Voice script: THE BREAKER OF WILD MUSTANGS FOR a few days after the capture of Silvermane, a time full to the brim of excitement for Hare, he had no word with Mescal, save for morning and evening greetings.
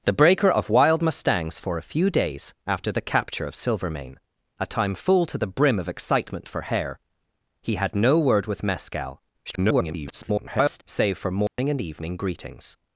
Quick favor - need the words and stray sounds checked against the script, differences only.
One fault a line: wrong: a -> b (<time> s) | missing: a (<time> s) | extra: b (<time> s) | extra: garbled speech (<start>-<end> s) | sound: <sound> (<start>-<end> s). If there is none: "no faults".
extra: garbled speech (9.5-10.8 s)
sound: dropout (11.5-11.6 s)